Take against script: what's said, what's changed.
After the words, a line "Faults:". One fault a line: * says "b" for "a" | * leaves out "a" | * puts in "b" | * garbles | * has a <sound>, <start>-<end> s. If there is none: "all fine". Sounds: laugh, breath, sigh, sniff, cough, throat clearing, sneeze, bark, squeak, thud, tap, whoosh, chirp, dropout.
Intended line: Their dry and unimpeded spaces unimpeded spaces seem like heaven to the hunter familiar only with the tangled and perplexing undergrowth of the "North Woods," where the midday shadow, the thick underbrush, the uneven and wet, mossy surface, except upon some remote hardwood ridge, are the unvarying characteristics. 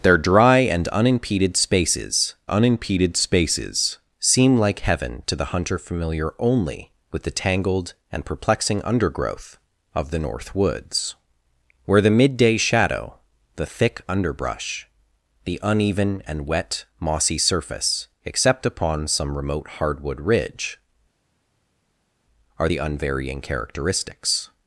Their dry and unimpeded spaces unimpeded spaces seem like heaven to the hunter familiar only with the tangled and perplexing undergrowth of the "North Woods," where the midday shadow, the thick underbrush, the uneven and wet, mossy surface, except upon some remote hardwood ridge, are the unvarying characteristics.
Faults:
all fine